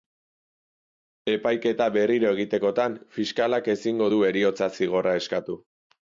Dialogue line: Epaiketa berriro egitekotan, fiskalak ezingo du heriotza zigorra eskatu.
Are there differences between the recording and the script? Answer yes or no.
no